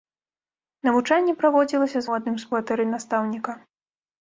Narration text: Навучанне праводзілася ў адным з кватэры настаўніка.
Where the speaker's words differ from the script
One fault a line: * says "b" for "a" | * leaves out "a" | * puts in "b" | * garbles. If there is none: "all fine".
all fine